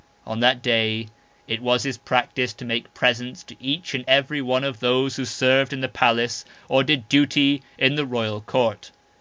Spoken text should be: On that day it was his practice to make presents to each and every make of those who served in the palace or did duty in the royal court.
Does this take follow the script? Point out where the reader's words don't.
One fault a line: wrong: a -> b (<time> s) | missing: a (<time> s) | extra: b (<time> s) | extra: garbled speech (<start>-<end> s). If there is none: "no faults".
wrong: make -> one (4.4 s)